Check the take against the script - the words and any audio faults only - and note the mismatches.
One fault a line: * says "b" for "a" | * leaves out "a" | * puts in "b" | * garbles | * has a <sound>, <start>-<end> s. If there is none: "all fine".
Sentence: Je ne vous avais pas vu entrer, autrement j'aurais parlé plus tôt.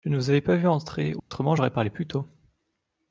* has a dropout, 1.2-1.3 s